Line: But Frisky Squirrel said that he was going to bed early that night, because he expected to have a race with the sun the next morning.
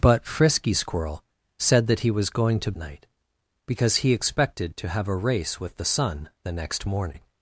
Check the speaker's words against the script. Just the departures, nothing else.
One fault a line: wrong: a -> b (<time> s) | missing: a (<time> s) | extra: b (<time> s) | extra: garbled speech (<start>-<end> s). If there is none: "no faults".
missing: bed early that (2.7 s)